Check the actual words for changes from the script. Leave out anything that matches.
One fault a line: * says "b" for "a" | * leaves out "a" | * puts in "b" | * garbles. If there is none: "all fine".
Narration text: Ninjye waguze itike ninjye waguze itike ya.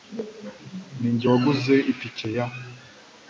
* leaves out "ninjye waguze itike"